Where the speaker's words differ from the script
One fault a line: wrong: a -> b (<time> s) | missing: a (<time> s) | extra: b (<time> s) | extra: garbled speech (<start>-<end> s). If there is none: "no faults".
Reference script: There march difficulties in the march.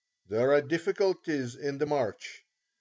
wrong: march -> are (0.5 s)